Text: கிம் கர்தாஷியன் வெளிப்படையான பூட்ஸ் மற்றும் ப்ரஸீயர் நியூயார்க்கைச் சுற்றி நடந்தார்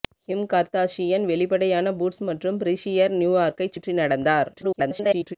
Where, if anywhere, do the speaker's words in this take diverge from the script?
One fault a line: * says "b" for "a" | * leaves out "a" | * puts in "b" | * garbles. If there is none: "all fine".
* garbles